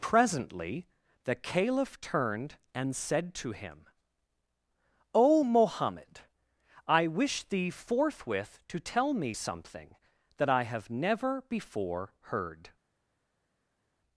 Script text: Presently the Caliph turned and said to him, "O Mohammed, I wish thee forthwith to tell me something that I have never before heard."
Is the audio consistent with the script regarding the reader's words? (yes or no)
yes